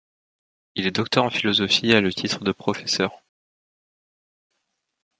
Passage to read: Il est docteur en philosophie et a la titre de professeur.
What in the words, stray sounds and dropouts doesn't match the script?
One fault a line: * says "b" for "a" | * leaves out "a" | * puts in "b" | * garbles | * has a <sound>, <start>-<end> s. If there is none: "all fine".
* says "le" for "la"